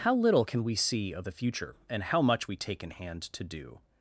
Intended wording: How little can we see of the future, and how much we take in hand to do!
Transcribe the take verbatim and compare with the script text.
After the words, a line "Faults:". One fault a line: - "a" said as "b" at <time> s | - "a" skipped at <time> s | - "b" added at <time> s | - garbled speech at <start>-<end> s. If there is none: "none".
How little can we see of the future, and how much we take in hand to do!
Faults:
none